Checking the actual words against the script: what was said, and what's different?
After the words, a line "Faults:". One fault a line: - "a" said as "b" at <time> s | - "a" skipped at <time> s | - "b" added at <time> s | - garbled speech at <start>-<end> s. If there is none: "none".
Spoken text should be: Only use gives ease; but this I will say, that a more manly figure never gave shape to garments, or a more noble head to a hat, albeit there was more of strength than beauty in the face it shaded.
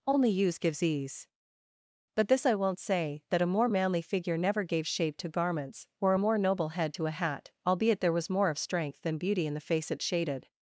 Only use gives ease; but this I won't say, that a more manly figure never gave shape to garments, or a more noble head to a hat, albeit there was more of strength than beauty in the face it shaded.
Faults:
- "will" said as "won't" at 2.5 s